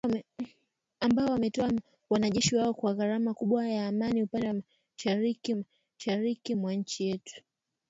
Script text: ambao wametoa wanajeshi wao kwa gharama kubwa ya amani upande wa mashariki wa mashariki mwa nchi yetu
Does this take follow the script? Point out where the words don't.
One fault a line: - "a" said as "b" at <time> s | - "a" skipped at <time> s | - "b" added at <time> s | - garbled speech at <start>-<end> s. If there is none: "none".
none